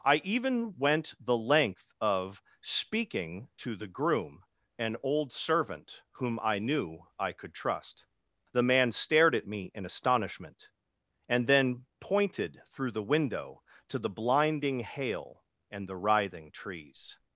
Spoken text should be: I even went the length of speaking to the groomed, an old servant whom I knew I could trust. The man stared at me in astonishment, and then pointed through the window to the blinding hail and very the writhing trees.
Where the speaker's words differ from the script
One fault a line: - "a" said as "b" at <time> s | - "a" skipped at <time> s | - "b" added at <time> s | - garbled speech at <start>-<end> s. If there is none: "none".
- "groomed" said as "groom" at 3.9 s
- "very" skipped at 15.9 s